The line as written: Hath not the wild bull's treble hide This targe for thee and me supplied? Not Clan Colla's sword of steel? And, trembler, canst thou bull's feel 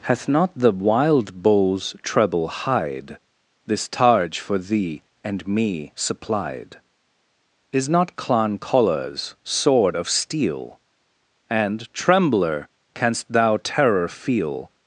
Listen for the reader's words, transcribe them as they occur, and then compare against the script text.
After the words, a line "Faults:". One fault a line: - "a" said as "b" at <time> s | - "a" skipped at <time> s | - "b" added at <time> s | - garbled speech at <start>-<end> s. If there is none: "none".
Hath not the wild bull's treble hide This targe for thee and me supplied? Is not Clan Colla's sword of steel? And, trembler, canst thou terror feel
Faults:
- "Is" added at 7.7 s
- "bull's" said as "terror" at 13.6 s